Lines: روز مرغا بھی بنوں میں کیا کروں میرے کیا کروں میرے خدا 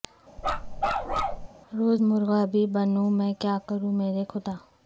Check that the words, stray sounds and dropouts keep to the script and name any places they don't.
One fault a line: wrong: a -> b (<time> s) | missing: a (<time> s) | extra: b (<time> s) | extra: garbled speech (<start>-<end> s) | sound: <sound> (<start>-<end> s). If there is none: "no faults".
sound: bark (0.4-1.5 s)
missing: کیا کروں میرے (4.2 s)